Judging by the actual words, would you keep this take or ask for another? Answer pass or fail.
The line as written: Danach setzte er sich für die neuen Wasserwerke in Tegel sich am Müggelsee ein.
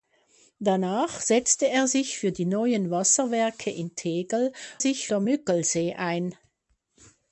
pass